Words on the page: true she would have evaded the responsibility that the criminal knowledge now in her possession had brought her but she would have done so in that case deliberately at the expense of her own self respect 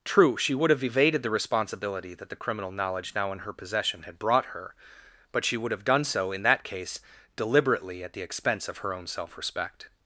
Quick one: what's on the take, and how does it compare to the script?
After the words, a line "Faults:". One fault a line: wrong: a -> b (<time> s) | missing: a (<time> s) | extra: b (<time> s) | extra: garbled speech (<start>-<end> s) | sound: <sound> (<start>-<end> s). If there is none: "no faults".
true she would have evaded the responsibility that the criminal knowledge now in her possession had brought her but she would have done so in that case deliberately at the expense of her own self respect
Faults:
no faults